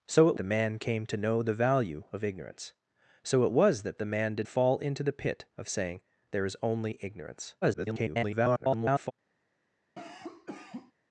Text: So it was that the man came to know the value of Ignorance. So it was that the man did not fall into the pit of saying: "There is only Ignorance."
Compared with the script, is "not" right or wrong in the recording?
wrong